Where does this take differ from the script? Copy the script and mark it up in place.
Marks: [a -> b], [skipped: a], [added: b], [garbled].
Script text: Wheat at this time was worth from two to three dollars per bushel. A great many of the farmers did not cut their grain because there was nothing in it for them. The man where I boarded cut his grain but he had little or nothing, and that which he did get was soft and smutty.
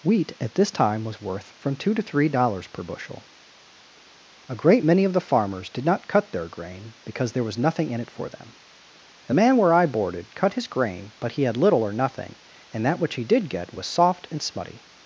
Wheat at this time was worth from two to three dollars per bushel. A great many of the farmers did not cut their grain because there was nothing in it for them. The man where I boarded cut his grain but he had little or nothing, and that which he did get was soft and smutty.